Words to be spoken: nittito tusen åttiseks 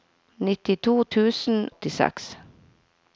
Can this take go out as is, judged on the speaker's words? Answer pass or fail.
pass